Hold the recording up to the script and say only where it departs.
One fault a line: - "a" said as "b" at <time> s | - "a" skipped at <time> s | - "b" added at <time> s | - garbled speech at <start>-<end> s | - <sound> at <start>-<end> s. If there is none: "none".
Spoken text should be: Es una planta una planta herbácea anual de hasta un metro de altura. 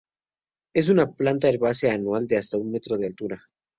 - "una planta" skipped at 1.5 s